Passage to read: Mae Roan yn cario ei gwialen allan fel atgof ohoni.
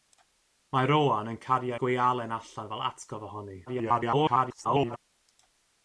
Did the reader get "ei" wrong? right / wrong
wrong